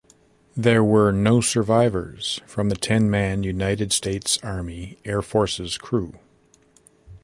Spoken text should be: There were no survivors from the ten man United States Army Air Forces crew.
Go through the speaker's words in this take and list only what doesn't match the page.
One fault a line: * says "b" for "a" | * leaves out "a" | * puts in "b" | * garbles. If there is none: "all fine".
all fine